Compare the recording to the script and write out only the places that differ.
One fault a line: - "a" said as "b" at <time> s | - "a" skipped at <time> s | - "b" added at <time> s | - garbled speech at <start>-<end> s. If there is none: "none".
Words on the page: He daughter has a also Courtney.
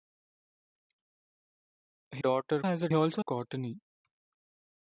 none